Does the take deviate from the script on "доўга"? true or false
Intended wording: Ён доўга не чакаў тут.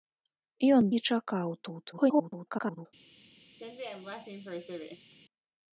true